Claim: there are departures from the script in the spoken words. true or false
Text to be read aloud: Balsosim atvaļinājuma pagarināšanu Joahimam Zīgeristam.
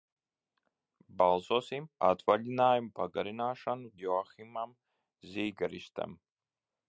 false